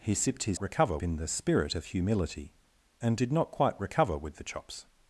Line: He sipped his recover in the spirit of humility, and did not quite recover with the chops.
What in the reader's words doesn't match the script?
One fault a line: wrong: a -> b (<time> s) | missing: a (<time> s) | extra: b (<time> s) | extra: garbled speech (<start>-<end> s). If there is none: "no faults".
no faults